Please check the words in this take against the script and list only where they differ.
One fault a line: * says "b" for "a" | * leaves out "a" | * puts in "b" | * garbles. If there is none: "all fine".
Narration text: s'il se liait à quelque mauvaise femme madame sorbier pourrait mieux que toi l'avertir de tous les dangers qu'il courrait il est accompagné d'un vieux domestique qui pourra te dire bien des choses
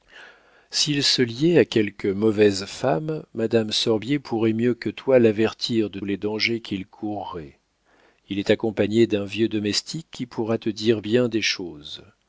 * leaves out "tous"